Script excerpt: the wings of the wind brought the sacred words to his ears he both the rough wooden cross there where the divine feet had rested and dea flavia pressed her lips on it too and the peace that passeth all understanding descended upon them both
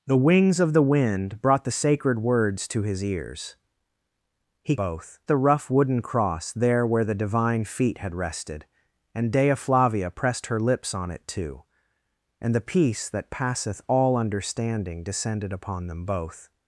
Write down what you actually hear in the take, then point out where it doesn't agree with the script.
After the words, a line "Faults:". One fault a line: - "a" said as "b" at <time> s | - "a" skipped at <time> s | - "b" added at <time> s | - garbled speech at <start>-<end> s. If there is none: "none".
the wings of the wind brought the sacred words to his ears he both the rough wooden cross there where the divine feet had rested and dea flavia pressed her lips on it too and the peace that passeth all understanding descended upon them both
Faults:
none